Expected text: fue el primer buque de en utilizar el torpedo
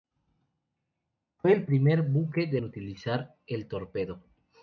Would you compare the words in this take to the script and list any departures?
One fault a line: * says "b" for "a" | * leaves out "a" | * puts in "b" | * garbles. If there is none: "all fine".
all fine